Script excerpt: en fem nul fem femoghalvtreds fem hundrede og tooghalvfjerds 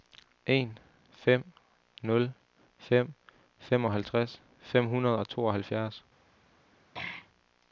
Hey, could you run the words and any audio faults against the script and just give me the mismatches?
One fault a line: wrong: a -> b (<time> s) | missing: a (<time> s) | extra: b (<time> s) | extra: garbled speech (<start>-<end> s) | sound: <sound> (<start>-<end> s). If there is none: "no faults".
sound: throat clearing (6.9-7.3 s)